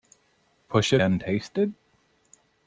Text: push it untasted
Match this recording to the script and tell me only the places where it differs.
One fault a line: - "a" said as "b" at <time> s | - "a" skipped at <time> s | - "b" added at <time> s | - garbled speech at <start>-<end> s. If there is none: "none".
none